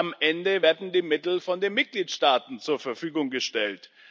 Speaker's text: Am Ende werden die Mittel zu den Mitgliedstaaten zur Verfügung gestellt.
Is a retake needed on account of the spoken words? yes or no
yes